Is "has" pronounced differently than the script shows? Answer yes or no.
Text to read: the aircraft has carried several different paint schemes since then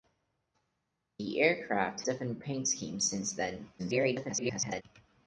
yes